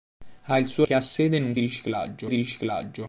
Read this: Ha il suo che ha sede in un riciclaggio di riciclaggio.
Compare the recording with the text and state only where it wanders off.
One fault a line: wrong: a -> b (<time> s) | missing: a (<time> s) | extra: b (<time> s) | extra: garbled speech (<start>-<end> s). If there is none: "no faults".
no faults